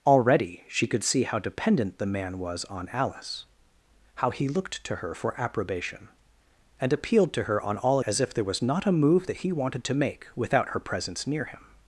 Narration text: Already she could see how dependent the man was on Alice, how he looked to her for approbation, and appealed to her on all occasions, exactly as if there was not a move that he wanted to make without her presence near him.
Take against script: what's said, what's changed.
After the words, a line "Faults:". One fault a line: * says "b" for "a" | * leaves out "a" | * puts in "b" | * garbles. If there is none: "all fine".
Already she could see how dependent the man was on Alice, how he looked to her for approbation, and appealed to her on all as if there was not a move that he wanted to make without her presence near him.
Faults:
* leaves out "occasions exactly"